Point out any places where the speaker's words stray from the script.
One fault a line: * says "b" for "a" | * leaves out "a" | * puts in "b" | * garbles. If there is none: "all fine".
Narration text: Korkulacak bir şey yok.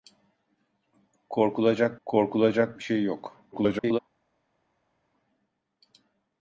* puts in "korkulacak"
* garbles